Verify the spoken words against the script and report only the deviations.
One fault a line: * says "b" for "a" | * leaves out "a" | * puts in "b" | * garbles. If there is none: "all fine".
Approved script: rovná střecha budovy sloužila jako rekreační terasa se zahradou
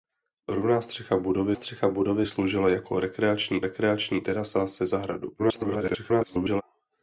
* puts in "střecha budovy"
* puts in "rekreační"
* garbles